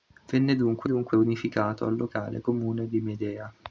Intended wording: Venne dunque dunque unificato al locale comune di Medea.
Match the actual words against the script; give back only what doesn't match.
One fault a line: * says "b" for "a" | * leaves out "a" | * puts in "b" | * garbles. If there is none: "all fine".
all fine